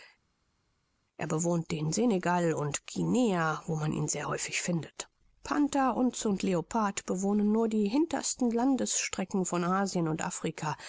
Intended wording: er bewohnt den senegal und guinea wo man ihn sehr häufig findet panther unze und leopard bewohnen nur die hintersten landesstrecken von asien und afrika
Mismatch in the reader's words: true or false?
false